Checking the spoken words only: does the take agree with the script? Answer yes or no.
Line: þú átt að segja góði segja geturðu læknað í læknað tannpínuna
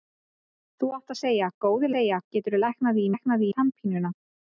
yes